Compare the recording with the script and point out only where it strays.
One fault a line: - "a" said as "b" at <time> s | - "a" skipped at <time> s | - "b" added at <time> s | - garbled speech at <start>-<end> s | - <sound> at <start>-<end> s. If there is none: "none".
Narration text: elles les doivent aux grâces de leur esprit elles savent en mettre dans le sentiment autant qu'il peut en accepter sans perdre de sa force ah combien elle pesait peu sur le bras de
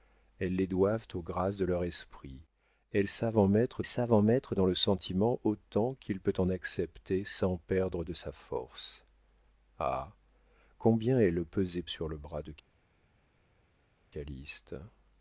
- "savent en mettre" added at 3.8 s
- "peu" skipped at 11.8 s